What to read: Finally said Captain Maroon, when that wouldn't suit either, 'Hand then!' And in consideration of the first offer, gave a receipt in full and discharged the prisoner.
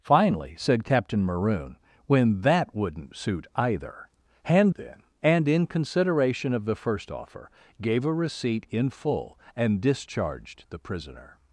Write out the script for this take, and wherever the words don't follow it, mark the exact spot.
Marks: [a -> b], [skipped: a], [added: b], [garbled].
Finally said Captain Maroon, when that wouldn't suit either, 'Hand then!' And in consideration of the first offer, gave a receipt in full and discharged the prisoner.